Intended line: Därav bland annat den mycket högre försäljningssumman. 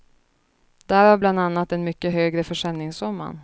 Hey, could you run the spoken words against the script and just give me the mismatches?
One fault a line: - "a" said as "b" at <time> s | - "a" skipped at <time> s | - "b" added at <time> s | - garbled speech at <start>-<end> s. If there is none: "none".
none